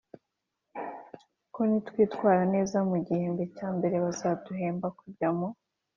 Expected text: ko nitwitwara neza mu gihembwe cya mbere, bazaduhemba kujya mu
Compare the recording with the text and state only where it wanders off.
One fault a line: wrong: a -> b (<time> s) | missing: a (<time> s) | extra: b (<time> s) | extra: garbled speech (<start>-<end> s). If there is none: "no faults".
no faults